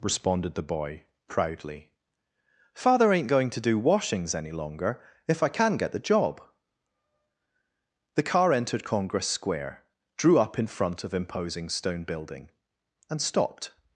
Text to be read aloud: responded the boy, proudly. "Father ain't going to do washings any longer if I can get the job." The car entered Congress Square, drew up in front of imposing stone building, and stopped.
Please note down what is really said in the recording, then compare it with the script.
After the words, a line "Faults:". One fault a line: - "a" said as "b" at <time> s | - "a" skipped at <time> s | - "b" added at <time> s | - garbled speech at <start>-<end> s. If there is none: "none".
responded the boy, proudly. "Father ain't going to do washings any longer if I can get the job." The car entered Congress Square, drew up in front of imposing stone building, and stopped.
Faults:
none